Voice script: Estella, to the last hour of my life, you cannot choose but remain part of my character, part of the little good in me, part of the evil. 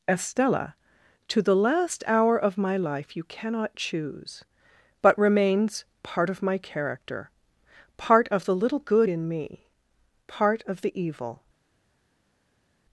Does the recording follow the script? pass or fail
fail